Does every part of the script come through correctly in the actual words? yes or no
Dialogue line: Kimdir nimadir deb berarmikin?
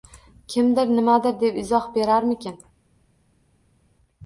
no